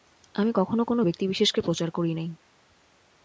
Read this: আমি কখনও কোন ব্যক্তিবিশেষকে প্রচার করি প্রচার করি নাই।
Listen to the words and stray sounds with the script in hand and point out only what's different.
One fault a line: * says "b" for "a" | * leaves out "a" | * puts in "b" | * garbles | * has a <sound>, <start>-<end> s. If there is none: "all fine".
* leaves out "প্রচার করি"